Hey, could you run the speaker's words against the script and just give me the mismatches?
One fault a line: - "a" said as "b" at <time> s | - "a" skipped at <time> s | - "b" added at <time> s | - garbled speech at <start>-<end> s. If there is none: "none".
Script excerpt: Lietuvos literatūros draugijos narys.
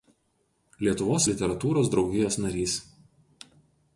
none